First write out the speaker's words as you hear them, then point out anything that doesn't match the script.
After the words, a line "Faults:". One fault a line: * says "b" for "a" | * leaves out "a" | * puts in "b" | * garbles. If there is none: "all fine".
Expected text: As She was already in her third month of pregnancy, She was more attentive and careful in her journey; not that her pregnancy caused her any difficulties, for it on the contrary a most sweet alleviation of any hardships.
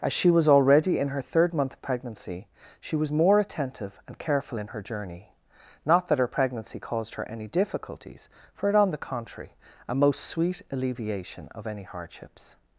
As She was already in her third month of pregnancy, She was more attentive and careful in her journey; not that her pregnancy caused her any difficulties, for it on the contrary a most sweet alleviation of any hardships.
Faults:
all fine